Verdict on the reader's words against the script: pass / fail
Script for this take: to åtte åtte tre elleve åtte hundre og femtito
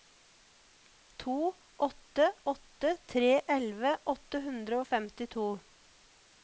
pass